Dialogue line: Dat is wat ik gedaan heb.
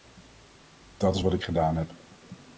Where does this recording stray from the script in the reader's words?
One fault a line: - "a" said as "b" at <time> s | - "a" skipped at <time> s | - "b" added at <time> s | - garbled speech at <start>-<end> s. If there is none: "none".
none